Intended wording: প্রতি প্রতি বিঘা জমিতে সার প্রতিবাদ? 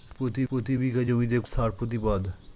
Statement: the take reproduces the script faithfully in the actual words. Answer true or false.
true